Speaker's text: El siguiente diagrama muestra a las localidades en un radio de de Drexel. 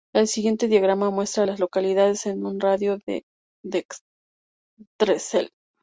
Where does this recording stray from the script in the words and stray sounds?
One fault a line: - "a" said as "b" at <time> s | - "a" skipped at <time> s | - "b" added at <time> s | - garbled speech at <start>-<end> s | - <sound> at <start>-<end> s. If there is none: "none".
none